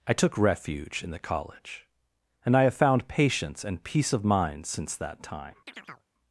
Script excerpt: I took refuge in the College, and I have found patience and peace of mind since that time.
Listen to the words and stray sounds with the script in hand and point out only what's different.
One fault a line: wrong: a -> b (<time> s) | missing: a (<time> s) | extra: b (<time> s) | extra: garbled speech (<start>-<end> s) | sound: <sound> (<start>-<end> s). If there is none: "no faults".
sound: chirp (5.7-6.1 s)